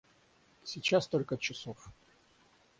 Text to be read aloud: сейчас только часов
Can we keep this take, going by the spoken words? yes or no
yes